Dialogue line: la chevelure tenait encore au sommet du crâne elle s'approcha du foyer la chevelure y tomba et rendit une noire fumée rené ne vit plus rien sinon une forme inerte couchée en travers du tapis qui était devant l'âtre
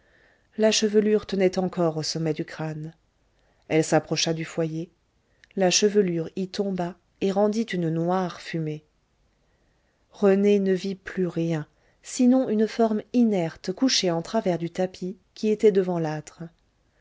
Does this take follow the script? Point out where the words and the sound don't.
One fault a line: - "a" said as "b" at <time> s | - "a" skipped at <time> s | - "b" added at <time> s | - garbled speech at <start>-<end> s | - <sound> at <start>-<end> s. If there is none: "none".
none